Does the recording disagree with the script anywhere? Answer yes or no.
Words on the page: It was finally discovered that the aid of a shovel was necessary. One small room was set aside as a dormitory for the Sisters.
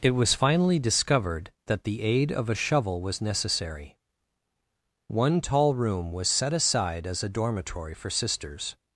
yes